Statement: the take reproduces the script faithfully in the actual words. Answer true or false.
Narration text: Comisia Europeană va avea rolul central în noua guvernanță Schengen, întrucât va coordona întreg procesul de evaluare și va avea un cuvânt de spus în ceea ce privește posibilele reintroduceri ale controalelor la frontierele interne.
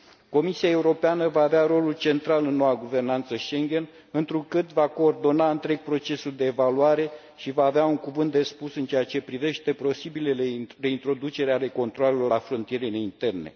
true